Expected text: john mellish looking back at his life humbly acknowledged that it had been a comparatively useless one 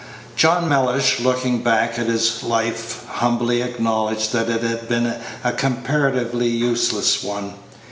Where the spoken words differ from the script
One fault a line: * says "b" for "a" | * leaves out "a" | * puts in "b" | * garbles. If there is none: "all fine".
all fine